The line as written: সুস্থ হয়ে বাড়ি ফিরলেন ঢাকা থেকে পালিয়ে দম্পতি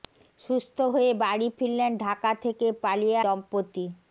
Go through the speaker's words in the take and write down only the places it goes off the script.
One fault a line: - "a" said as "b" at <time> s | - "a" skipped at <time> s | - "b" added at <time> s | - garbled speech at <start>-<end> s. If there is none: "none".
none